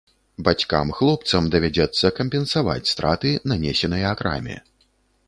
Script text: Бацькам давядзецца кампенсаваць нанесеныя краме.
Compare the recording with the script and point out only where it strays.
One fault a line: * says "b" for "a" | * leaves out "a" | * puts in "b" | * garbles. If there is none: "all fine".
* puts in "хлопцам"
* puts in "страты"